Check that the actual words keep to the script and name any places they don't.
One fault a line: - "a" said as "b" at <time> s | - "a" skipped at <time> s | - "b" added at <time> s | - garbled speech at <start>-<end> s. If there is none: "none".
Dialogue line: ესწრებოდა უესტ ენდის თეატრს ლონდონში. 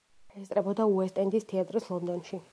none